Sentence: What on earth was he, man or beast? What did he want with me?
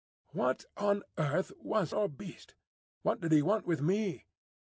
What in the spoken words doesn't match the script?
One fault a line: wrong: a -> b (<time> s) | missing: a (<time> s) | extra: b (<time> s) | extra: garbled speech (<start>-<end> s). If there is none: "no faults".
missing: he man (1.9 s)